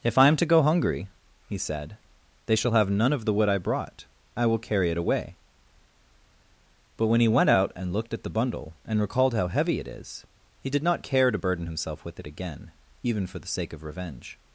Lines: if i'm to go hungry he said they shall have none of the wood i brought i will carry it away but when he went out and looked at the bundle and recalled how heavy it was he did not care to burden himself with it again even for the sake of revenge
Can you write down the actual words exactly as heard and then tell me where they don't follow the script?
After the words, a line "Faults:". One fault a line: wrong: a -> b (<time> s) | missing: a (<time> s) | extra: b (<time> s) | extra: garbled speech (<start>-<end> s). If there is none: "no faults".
if i'm to go hungry he said they shall have none of the wood i brought i will carry it away but when he went out and looked at the bundle and recalled how heavy it is he did not care to burden himself with it again even for the sake of revenge
Faults:
wrong: was -> is (9.9 s)